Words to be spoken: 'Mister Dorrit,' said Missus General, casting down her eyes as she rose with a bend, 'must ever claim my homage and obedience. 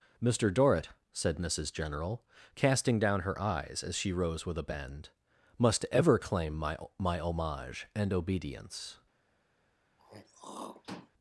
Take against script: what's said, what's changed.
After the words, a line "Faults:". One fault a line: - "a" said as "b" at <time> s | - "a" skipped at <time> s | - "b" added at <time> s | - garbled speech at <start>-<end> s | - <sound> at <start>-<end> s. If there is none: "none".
'Mister Dorrit,' said Missus General, casting down her eyes as she rose with a bend, 'must ever claim my my homage and obedience.
Faults:
- "my" added at 7.0 s
- throat clearing at 10.0-11.1 s